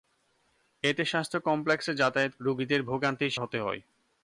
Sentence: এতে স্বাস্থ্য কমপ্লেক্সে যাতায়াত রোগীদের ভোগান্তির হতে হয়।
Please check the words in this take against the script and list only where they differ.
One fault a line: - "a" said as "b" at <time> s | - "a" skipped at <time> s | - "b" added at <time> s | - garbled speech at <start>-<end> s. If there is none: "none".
none